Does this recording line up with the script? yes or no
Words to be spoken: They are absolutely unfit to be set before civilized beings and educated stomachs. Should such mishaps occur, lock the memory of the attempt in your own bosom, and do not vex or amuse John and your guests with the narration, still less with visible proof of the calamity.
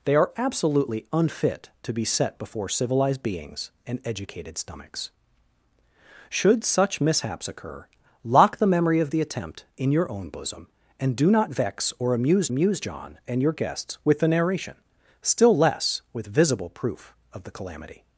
no